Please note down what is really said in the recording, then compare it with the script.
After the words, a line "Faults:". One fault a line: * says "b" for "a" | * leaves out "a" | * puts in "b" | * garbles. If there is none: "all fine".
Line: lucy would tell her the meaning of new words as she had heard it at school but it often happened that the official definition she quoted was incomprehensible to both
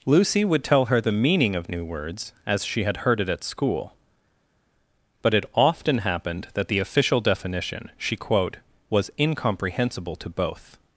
lucy would tell her the meaning of new words as she had heard it at school but it often happened that the official definition she quote was incomprehensible to both
Faults:
* says "quote" for "quoted"